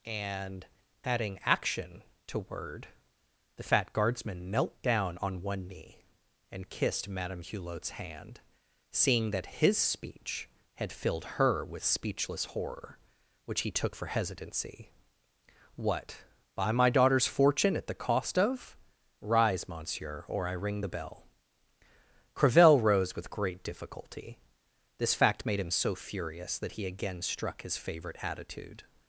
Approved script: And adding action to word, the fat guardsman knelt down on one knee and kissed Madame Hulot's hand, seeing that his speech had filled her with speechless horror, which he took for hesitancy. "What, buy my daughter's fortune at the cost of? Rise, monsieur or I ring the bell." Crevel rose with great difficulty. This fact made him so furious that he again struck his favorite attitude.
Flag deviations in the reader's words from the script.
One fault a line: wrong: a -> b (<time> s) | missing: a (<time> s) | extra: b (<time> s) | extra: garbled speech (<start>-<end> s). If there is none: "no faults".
no faults